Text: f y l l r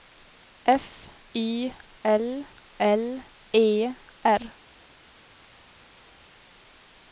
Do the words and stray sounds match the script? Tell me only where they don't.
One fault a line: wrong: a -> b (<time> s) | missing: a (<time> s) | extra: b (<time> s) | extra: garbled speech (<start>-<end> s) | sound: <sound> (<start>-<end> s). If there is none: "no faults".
extra: e (3.5 s)